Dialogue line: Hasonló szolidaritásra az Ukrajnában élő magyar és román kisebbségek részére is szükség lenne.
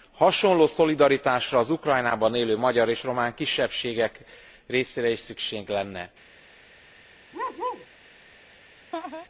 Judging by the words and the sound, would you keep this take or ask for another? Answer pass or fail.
fail